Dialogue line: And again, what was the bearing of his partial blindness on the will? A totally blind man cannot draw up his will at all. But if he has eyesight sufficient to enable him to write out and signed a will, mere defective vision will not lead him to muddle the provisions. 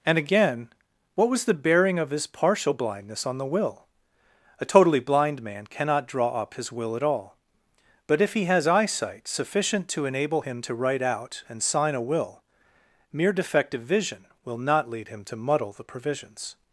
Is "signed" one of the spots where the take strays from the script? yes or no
yes